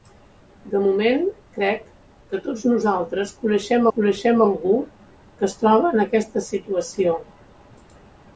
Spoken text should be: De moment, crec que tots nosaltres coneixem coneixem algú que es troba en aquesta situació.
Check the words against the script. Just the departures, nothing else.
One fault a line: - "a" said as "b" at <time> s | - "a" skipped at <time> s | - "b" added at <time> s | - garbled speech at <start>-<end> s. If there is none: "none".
none